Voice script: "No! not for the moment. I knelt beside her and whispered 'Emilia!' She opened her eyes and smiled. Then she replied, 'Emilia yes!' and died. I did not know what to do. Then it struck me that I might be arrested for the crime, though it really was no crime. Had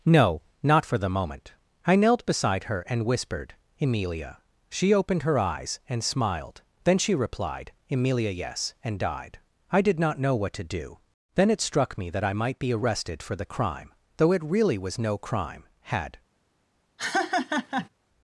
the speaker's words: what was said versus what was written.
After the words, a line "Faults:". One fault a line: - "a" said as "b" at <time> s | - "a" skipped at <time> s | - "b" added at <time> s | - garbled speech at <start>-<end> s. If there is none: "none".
"No! not for the moment. I knelt beside her and whispered 'Emilia!' She opened her eyes and smiled. Then she replied, 'Emilia yes!' and died. I did not know what to do. Then it struck me that I might be arrested for the crime, though it really was no crime. Had
Faults:
none